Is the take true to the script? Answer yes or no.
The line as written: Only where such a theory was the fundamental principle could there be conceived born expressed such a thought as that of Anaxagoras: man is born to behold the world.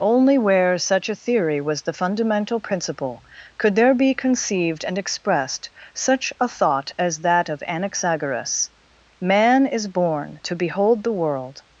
no